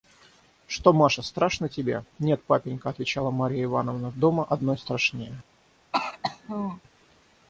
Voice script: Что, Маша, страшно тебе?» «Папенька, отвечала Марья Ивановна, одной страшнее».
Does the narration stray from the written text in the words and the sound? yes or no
yes